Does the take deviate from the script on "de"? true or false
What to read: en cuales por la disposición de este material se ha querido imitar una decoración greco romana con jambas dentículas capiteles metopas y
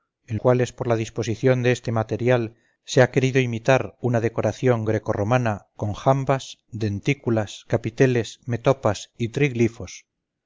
false